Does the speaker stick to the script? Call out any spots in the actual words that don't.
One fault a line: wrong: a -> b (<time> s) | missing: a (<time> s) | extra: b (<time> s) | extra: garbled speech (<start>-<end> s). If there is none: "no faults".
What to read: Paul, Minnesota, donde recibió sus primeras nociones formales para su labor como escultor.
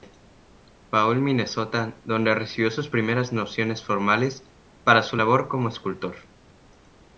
no faults